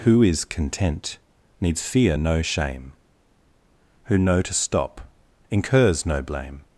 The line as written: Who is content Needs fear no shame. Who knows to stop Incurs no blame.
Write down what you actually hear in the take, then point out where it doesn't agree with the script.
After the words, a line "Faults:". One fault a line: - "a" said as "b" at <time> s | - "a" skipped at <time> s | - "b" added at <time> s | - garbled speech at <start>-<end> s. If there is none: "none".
Who is content Needs fear no shame. Who know to stop Incurs no blame.
Faults:
- "knows" said as "know" at 4.2 s